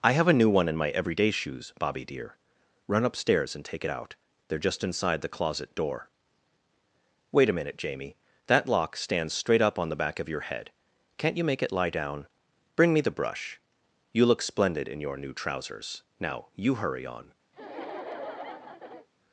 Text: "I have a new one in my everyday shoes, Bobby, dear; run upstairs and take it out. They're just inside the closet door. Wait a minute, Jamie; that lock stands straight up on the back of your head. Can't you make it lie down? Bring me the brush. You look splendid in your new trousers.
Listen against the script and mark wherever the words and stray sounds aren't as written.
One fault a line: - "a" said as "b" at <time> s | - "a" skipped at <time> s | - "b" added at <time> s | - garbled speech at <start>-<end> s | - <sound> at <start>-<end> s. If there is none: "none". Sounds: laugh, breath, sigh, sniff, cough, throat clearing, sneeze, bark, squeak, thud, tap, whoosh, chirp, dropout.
- "Now you hurry on" added at 16.2 s
- laugh at 17.5-19.1 s